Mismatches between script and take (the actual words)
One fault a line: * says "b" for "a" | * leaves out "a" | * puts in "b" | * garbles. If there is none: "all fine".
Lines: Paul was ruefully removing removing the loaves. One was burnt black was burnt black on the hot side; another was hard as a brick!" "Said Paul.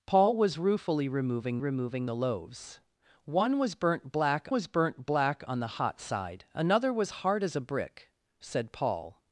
all fine